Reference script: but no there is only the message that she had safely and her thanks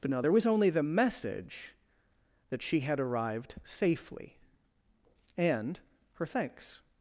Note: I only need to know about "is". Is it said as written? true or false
false